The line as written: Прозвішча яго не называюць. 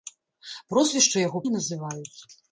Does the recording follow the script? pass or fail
pass